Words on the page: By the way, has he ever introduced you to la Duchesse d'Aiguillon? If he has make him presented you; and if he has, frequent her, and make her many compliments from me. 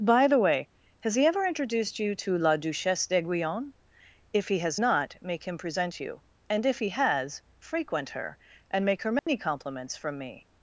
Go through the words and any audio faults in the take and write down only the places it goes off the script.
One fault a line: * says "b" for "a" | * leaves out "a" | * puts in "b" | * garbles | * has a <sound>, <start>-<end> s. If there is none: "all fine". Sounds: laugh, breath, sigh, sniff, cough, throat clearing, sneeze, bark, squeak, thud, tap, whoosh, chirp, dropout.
* puts in "not"
* says "present" for "presented"
* has a dropout, 9.2-9.3 s